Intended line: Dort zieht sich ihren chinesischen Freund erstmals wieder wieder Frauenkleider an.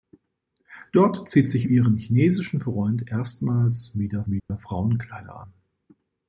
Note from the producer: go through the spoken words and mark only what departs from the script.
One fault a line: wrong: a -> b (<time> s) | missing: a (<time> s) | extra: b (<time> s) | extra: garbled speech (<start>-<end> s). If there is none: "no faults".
no faults